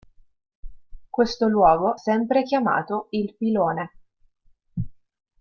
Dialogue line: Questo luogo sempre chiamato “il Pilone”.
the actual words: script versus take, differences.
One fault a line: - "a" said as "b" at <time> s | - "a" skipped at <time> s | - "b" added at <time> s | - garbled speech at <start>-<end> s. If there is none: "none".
none